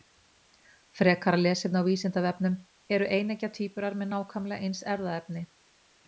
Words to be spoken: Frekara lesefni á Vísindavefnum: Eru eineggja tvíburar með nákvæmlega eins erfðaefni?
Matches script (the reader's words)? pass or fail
pass